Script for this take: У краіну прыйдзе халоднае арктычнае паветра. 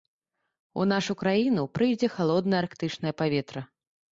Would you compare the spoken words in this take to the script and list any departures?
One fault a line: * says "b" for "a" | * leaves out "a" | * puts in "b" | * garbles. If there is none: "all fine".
* puts in "нашу"